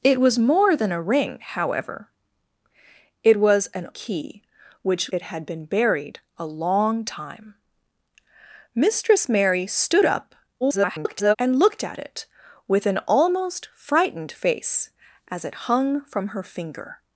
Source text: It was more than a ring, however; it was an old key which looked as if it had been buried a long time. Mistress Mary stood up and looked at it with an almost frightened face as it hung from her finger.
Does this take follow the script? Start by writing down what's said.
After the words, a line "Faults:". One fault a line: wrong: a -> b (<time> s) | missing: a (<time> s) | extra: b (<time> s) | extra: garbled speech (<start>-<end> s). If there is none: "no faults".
It was more than a ring, however; it was an key which it had been buried a long time. Mistress Mary stood up [garbled] and looked at it with an almost frightened face as it hung from her finger.
Faults:
missing: old (3.9 s)
missing: looked as if (5.1 s)
extra: garbled speech (10.6-11.4 s)